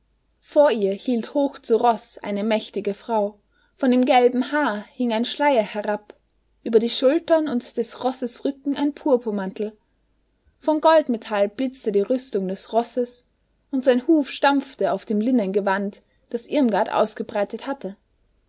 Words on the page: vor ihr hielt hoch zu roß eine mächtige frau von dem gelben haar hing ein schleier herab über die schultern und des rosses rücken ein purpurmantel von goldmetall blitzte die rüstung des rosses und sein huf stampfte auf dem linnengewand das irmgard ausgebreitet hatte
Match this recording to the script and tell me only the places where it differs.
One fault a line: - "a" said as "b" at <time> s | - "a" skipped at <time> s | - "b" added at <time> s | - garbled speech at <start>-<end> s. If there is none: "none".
none